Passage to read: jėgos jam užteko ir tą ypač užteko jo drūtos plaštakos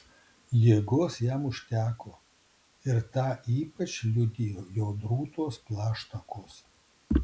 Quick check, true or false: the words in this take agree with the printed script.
false